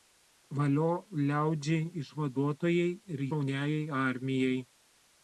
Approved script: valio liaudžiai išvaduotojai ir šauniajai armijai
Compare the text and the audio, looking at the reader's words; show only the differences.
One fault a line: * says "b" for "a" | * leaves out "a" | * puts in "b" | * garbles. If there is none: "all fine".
all fine